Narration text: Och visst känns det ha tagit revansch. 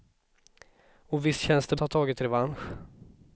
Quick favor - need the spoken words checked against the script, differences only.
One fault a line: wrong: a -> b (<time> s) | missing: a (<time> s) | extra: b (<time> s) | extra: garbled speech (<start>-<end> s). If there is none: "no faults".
no faults